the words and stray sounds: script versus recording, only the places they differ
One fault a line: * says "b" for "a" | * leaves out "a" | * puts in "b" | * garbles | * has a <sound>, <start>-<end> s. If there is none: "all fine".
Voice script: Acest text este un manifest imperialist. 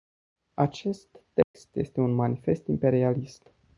* has a dropout, 1.4-1.5 s